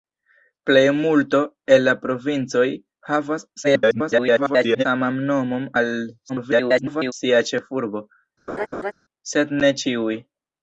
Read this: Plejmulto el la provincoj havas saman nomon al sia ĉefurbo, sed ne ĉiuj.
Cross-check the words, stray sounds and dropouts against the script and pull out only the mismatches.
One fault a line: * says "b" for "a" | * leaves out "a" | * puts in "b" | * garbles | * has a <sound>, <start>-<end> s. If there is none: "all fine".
* garbles
* garbles
* has a laugh, 8.5-8.9 s